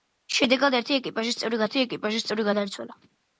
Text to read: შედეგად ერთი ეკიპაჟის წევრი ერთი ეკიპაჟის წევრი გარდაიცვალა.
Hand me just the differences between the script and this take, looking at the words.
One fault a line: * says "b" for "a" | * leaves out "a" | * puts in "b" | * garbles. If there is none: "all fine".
all fine